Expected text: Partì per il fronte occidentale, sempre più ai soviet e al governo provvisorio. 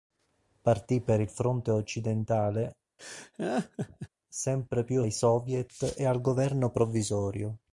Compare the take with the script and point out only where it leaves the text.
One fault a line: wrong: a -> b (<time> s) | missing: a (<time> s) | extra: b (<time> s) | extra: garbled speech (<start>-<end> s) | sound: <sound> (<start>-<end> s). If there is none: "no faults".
sound: laugh (3.0-4.1 s)